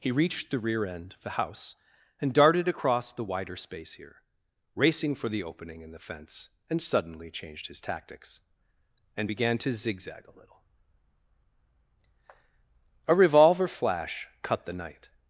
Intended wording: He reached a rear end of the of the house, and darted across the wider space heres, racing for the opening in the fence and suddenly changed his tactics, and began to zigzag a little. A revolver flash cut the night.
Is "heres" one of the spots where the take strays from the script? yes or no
yes